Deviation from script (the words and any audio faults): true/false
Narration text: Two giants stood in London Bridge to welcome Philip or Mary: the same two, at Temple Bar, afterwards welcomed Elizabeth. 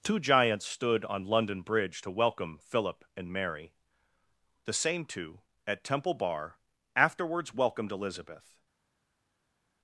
true